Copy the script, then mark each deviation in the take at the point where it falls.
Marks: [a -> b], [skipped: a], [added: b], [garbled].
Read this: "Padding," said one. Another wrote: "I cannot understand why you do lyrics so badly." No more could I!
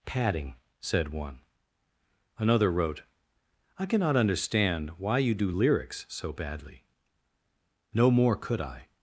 "Padding," said one. Another wrote: "I cannot understand why you do lyrics so badly." No more could I!